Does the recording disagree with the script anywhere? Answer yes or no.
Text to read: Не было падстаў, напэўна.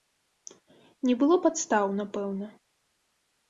no